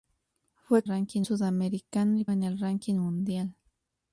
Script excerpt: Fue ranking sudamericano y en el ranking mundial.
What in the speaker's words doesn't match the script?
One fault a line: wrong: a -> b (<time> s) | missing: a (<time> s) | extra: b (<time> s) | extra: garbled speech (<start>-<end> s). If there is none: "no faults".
no faults